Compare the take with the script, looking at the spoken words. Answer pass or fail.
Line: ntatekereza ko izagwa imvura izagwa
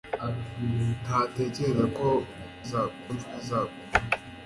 pass